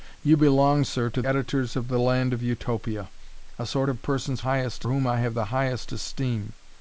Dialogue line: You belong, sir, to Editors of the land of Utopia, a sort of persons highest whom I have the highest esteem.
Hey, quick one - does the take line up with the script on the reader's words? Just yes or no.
yes